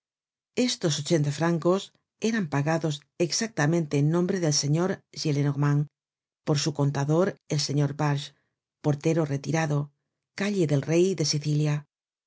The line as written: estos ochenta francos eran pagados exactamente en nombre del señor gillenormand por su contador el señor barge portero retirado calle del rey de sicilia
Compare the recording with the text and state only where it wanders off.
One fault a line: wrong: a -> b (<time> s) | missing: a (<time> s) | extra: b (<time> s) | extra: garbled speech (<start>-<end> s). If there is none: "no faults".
no faults